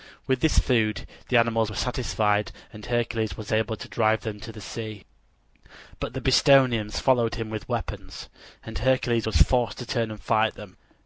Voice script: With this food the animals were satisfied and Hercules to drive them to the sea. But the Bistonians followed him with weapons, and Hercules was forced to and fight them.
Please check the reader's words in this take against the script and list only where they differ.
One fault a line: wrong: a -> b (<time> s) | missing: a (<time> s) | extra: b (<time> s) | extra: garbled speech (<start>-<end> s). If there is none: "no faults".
extra: was able (3.4 s)
extra: turn (9.9 s)